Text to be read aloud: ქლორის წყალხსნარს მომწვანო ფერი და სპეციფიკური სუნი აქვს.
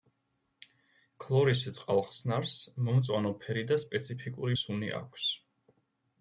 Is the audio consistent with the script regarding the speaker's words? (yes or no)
yes